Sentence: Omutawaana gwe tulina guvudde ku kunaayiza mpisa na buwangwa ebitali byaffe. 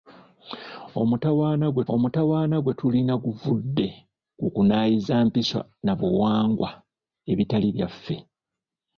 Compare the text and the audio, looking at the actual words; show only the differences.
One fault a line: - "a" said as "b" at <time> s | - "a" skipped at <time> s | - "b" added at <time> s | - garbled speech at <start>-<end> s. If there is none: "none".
- "omutawaana gwe" added at 1.9 s